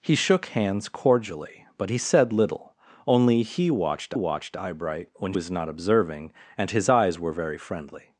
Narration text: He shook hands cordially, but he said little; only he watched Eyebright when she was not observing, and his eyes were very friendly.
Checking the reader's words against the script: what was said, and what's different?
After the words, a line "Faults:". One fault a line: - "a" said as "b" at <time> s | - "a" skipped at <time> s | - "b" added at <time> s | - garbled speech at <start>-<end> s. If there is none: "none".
He shook hands cordially, but he said little; only he watched watched Eyebright when was not observing, and his eyes were very friendly.
Faults:
- "watched" added at 4.1 s
- "she" skipped at 5.3 s